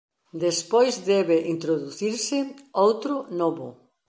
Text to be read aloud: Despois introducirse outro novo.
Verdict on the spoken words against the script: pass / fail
fail